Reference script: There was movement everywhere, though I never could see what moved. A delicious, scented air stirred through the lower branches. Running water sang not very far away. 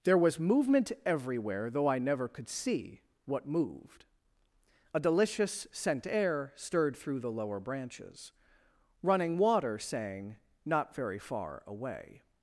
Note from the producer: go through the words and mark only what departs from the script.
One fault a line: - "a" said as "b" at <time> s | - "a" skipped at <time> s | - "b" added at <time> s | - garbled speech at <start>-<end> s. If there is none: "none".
- "scented" said as "scent" at 5.7 s